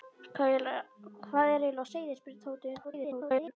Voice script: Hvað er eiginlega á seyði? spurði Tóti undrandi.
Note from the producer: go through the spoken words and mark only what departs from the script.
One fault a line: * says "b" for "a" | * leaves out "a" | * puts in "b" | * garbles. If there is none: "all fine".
* garbles